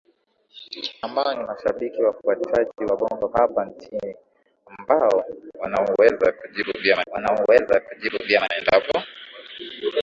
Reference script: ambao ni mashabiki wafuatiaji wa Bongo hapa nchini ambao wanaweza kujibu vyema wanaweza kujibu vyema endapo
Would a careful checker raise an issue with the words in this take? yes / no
no